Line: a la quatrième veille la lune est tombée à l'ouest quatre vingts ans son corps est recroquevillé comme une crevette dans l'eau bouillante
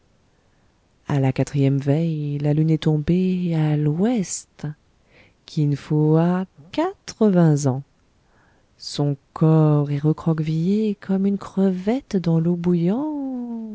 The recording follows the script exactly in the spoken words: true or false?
false